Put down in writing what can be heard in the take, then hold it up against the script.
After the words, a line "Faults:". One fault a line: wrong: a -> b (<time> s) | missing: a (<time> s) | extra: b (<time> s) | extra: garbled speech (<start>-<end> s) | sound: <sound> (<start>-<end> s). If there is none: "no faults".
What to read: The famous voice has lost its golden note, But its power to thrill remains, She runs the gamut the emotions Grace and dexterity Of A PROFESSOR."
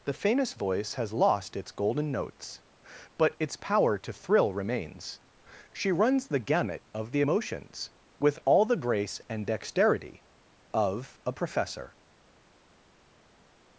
The famous voice has lost its golden notes, But its power to thrill remains, She runs the gamut of the emotions With all the grace and dexterity Of A PROFESSOR."
Faults:
wrong: note -> notes (2.1 s)
extra: of (6.9 s)
extra: With all the (8.2 s)